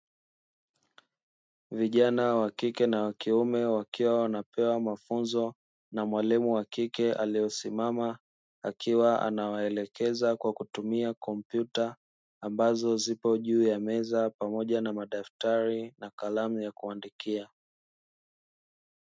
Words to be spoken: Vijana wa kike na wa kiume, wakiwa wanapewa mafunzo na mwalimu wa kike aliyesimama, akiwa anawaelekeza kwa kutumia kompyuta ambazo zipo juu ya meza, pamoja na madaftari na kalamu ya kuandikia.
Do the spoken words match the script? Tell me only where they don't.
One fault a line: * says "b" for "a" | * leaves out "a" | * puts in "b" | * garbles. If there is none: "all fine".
all fine